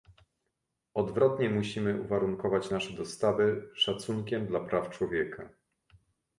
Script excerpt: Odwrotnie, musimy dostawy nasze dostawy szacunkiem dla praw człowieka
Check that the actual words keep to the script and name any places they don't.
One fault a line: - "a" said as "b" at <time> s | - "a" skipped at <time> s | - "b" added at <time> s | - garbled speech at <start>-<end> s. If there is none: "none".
- "dostawy" said as "uwarunkować" at 2.0 s